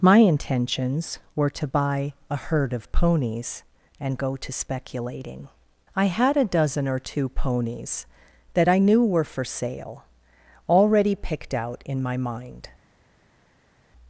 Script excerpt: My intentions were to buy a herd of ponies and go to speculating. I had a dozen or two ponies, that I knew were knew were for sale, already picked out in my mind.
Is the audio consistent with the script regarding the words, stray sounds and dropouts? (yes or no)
no